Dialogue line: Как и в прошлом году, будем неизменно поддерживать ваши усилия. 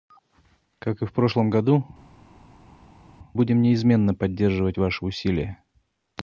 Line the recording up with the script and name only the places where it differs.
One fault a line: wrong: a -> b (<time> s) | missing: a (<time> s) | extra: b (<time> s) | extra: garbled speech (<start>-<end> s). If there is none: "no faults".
no faults